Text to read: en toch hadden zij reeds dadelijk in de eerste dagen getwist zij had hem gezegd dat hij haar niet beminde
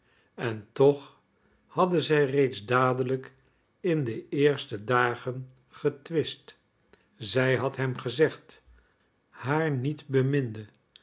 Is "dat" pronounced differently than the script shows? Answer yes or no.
yes